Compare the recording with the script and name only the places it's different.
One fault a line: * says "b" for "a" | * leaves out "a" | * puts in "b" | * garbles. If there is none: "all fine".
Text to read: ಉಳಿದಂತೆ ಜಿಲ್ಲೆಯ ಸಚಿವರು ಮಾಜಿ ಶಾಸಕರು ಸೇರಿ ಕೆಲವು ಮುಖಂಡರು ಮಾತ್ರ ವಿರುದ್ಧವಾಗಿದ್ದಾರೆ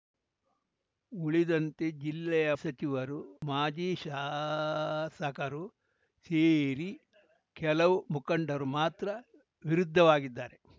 all fine